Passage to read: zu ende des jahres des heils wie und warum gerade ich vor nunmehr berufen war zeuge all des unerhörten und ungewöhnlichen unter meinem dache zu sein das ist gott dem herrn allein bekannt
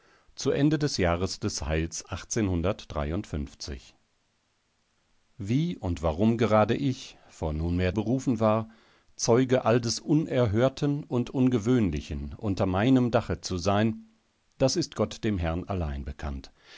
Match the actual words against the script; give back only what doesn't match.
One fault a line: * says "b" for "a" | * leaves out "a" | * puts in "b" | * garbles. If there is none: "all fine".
all fine